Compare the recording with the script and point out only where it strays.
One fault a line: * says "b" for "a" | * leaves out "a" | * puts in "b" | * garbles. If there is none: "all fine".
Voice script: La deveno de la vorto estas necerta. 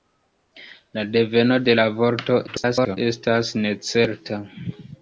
* garbles